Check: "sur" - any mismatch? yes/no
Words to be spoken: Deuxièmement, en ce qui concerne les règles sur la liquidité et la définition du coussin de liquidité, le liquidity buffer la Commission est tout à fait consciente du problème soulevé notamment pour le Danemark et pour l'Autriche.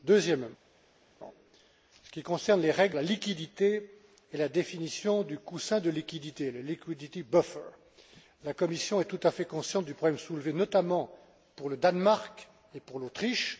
yes